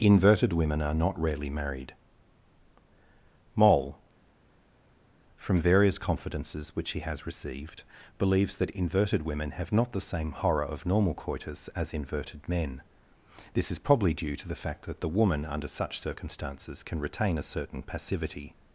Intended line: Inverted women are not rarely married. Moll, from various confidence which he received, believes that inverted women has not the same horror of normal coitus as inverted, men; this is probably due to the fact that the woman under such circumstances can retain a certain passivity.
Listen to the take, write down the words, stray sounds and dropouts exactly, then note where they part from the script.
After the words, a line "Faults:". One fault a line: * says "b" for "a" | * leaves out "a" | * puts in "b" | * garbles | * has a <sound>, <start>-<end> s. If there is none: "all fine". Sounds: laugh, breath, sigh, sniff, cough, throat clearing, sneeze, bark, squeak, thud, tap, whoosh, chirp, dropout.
Inverted women are not rarely married. Moll, from various confidences which he has received, believes that inverted women have not the same horror of normal coitus as inverted, men; this is probably due to the fact that the woman under such circumstances can retain a certain passivity.
Faults:
* says "confidences" for "confidence"
* puts in "has"
* says "have" for "has"